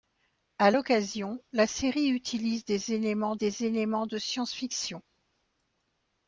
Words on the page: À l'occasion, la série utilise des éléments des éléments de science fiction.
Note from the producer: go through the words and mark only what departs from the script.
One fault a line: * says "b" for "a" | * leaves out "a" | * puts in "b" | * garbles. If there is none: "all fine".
all fine